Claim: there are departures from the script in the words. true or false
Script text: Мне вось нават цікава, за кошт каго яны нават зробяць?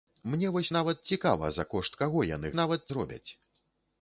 false